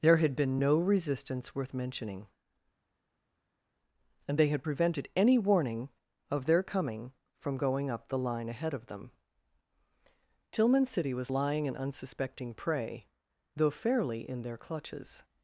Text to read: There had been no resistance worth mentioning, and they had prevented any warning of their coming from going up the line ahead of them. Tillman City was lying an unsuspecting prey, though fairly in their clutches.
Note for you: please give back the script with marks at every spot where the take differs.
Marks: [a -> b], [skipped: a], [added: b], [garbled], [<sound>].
There had been no resistance worth mentioning, and they had prevented any warning of their coming from going up the line ahead of them. Tillman City was lying an unsuspecting prey, though fairly in their clutches.